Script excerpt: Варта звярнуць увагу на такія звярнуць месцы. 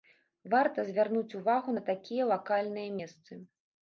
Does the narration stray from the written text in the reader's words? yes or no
yes